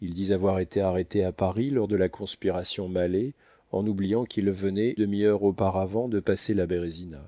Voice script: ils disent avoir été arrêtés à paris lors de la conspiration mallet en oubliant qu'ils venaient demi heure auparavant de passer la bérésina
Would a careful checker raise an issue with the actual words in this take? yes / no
no